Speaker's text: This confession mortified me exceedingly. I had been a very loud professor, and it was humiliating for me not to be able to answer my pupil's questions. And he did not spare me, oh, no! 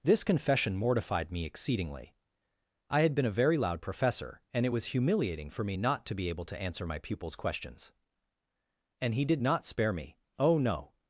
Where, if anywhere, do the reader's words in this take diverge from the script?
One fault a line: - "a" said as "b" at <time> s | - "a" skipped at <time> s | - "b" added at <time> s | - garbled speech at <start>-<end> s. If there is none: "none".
none